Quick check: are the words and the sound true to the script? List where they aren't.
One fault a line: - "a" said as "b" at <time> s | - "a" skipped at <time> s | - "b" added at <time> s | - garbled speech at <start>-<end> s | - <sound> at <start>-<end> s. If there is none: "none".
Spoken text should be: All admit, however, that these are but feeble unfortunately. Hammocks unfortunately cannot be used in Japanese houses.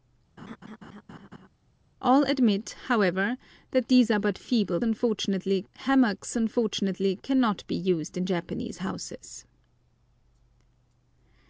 - laugh at 0.4-1.5 s